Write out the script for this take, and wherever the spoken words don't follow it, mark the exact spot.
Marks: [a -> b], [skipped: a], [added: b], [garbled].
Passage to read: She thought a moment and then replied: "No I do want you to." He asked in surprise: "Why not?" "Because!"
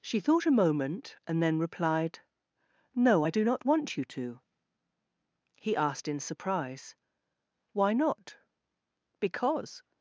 She thought a moment and then replied: "No I do [added: not] want you to." He asked in surprise: "Why not?" "Because!"